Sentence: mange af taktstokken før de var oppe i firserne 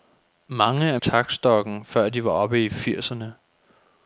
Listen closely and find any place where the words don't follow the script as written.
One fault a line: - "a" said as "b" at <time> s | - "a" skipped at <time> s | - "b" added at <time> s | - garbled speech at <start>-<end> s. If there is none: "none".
none